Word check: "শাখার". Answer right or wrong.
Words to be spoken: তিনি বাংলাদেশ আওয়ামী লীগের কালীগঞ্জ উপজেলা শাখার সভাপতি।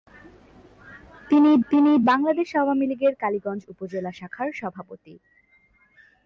right